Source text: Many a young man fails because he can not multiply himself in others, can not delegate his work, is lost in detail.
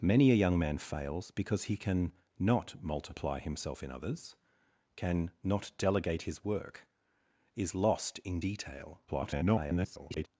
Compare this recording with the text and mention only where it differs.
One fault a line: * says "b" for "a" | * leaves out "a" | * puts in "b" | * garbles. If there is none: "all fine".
* garbles